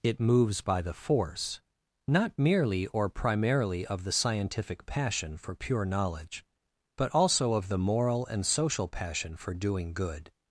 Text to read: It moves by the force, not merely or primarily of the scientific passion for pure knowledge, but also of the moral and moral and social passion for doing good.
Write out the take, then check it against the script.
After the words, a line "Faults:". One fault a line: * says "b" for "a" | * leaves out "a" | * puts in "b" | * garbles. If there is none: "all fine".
It moves by the force, not merely or primarily of the scientific passion for pure knowledge, but also of the moral and social passion for doing good.
Faults:
* leaves out "moral and"